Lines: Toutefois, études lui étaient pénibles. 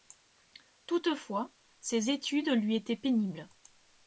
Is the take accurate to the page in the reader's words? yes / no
no